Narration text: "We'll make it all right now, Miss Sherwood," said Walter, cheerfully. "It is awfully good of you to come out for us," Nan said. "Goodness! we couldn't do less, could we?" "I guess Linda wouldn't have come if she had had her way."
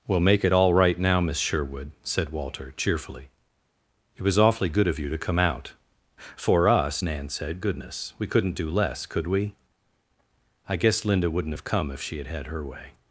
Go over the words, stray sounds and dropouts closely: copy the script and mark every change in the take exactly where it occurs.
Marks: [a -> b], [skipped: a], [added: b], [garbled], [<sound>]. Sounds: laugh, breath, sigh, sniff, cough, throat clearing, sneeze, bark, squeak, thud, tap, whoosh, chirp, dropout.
"We'll make it all right now, Miss Sherwood," said Walter, cheerfully. "It [is -> was] awfully good of you to come out for us," Nan said. "Goodness! we couldn't do less, could we?" "I guess Linda wouldn't have come if she had had her way."